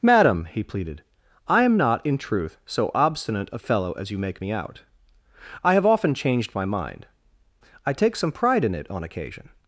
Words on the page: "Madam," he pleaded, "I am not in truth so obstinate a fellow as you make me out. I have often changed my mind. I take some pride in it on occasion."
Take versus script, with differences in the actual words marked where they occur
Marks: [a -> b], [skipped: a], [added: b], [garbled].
"Madam," he pleaded, "I am not in truth so obstinate a fellow as you make me out. I have often changed my mind. I take some pride in it on occasion."